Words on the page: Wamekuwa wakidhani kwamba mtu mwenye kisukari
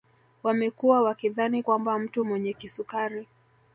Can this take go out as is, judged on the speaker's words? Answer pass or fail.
pass